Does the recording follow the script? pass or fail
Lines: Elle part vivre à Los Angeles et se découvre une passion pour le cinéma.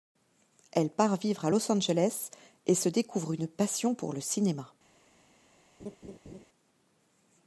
pass